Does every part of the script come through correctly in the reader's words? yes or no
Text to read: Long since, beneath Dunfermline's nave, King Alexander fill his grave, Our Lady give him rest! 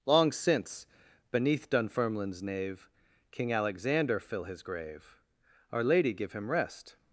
yes